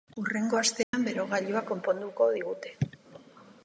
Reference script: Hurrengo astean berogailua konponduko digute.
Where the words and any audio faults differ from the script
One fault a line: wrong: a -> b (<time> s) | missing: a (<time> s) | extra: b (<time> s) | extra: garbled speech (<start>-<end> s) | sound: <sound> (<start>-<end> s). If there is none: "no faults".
sound: dropout (0.8-0.9 s)